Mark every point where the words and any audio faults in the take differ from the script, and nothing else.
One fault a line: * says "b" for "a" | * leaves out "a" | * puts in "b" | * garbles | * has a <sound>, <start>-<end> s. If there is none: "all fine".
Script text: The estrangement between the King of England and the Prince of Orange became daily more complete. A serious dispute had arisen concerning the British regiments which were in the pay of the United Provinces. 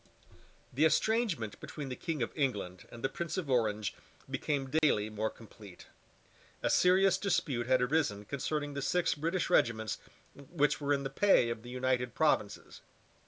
* has a dropout, 4.8-4.8 s
* puts in "six"